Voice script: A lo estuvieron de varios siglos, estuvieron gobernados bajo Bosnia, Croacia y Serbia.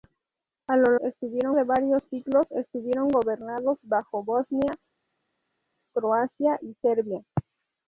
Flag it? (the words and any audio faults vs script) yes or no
no